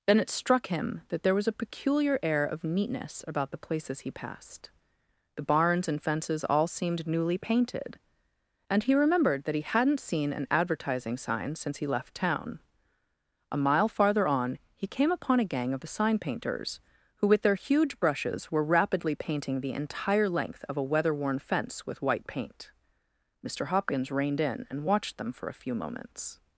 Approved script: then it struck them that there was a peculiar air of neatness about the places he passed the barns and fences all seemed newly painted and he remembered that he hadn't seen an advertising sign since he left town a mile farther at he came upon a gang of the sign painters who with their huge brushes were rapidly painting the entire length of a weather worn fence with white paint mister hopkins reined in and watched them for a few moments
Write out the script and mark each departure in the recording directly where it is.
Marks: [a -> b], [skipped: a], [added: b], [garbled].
then it struck [them -> him] that there was a peculiar air of neatness about the places he passed the barns and fences all seemed newly painted and he remembered that he hadn't seen an advertising sign since he left town a mile farther [at -> on] he came upon a gang of the sign painters who with their huge brushes were rapidly painting the entire length of a weather worn fence with white paint mister hopkins reined in and watched them for a few moments